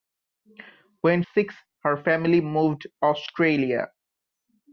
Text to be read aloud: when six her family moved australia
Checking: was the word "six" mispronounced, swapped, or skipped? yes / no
no